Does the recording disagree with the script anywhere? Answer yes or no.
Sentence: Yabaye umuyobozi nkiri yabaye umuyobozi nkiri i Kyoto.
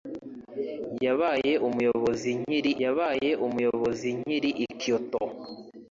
no